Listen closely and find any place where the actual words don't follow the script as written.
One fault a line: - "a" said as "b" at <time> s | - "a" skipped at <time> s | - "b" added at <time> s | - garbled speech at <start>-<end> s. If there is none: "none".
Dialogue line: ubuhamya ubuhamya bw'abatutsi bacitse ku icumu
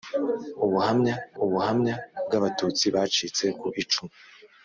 none